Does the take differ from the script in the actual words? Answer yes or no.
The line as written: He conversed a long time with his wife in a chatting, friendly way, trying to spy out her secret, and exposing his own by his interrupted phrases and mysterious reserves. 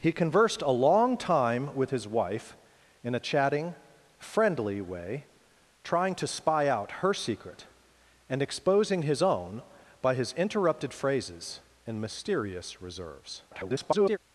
yes